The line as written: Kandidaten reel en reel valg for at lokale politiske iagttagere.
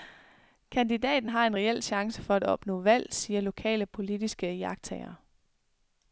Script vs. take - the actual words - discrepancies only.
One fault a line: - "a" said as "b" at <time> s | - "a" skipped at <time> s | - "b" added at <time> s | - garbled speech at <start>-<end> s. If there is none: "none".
- "reel" said as "har" at 1.3 s
- "valg" said as "chance" at 1.8 s
- "opnå valg siger" added at 2.4 s